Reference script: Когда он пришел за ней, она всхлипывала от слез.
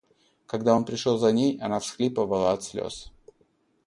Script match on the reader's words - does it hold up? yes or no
yes